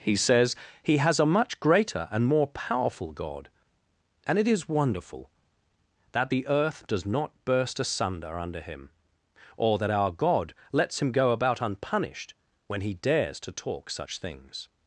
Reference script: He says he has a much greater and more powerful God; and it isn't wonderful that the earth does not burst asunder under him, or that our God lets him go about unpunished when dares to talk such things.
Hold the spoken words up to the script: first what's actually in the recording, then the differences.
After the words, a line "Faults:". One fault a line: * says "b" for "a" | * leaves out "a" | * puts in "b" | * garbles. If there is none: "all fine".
He says he has a much greater and more powerful God; and it is wonderful that the earth does not burst asunder under him, or that our God lets him go about unpunished when he dares to talk such things.
Faults:
* says "is" for "isn't"
* puts in "he"